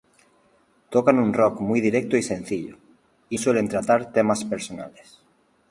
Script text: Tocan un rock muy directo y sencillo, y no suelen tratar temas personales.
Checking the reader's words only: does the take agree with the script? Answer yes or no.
no